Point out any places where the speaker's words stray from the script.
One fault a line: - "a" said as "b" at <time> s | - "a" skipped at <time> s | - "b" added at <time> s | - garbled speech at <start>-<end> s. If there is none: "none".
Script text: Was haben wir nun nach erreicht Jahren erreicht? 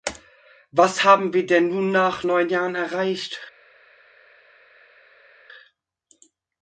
- "denn" added at 1.4 s
- "erreicht" said as "neun" at 2.2 s